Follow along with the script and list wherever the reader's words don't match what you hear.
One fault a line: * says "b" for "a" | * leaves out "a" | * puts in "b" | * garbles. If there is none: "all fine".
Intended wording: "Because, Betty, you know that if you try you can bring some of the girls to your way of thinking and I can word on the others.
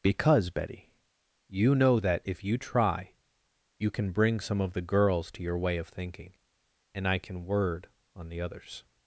all fine